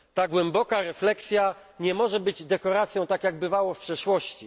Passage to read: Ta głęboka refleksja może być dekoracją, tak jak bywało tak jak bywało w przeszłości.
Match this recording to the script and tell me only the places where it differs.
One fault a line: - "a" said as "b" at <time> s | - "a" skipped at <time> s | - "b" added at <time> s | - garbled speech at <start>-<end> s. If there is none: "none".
- "nie" added at 1.8 s
- "tak jak bywało" skipped at 3.7 s